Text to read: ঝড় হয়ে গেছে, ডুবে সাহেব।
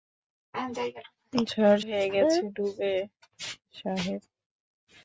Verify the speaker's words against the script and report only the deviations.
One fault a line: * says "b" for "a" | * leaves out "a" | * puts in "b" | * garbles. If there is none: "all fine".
all fine